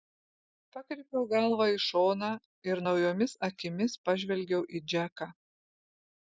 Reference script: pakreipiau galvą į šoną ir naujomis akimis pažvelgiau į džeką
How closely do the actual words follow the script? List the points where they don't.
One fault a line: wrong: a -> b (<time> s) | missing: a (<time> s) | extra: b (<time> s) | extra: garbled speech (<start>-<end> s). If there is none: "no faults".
no faults